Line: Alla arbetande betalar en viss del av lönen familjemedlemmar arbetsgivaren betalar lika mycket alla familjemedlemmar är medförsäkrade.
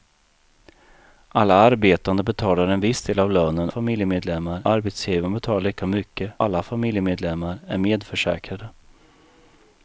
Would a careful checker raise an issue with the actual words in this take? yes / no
no